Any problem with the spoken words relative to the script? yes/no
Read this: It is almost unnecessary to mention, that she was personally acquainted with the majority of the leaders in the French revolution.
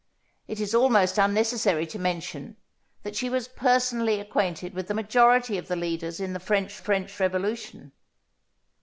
yes